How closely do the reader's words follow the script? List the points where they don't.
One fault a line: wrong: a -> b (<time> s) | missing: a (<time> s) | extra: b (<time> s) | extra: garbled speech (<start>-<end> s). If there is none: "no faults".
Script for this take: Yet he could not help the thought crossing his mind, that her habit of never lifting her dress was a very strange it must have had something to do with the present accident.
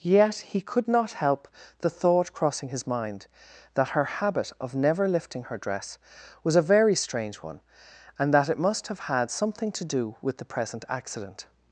extra: one and that (7.4 s)